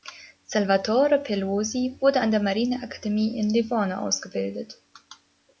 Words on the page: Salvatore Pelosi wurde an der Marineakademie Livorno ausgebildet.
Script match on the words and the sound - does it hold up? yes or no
no